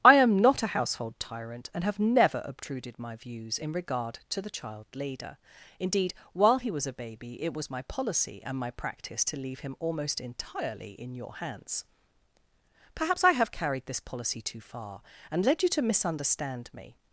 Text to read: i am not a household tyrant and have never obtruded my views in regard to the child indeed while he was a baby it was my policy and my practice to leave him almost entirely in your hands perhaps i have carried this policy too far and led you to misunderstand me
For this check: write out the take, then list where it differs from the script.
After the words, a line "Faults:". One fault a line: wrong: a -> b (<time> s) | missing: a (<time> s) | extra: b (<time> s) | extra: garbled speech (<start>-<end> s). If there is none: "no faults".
i am not a household tyrant and have never obtruded my views in regard to the child leader indeed while he was a baby it was my policy and my practice to leave him almost entirely in your hands perhaps i have carried this policy too far and led you to misunderstand me
Faults:
extra: leader (4.9 s)